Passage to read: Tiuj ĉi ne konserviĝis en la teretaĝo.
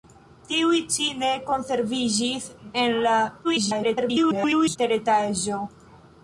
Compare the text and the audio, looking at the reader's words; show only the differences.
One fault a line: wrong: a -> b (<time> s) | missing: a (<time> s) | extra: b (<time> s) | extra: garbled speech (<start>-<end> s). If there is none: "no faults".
extra: garbled speech (3.4-4.8 s)